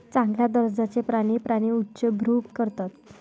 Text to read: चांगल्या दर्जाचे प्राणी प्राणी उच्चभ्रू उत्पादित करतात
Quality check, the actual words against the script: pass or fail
fail